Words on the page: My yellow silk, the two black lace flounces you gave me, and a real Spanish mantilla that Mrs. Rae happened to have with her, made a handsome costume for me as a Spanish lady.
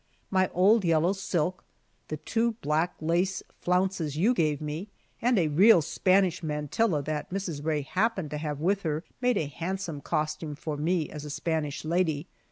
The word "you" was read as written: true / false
true